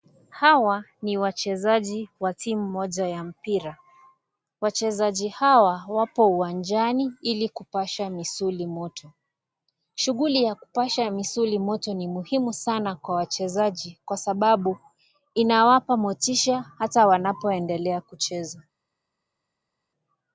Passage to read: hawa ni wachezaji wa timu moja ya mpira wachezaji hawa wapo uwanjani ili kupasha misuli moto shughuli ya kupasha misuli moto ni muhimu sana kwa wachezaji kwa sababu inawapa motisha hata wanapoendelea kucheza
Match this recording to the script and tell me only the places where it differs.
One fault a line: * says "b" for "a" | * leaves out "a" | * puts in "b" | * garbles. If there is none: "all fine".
all fine